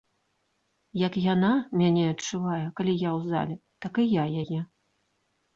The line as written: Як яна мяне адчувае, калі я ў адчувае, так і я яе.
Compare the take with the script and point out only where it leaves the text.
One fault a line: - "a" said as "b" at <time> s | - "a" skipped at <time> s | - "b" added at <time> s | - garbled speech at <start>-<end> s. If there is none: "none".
- "адчувае" said as "зале" at 3.3 s